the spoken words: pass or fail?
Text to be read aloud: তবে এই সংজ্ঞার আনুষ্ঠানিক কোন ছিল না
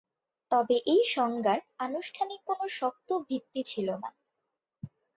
fail